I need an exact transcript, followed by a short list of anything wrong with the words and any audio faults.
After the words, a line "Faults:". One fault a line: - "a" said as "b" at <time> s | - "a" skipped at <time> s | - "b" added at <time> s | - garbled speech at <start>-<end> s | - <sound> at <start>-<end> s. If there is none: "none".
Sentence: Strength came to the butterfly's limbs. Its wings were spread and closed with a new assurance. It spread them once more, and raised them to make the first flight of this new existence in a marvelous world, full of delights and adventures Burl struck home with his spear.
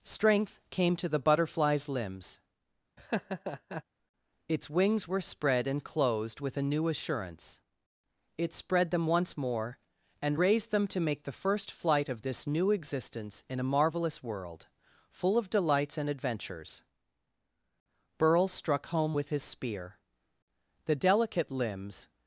Strength came to the butterfly's limbs. Its wings were spread and closed with a new assurance. It spread them once more, and raised them to make the first flight of this new existence in a marvelous world, full of delights and adventures Burl struck home with his spear. The delicate limbs
Faults:
- laugh at 3.0-3.8 s
- "The delicate limbs" added at 20.9 s